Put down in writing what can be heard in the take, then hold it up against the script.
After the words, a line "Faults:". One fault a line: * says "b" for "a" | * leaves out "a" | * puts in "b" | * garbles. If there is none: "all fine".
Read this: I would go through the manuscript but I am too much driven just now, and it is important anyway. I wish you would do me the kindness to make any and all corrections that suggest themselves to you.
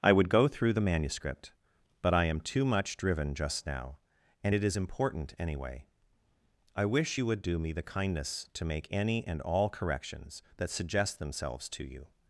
I would go through the manuscript but I am too much driven just now, and it is important anyway. I wish you would do me the kindness to make any and all corrections that suggest themselves to you.
Faults:
all fine